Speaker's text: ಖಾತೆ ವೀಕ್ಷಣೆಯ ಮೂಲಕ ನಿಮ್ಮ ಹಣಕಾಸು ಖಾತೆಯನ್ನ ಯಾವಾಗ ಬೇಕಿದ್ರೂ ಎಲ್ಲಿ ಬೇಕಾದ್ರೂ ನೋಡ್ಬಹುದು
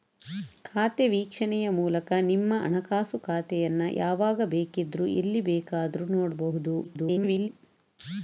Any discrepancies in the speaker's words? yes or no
yes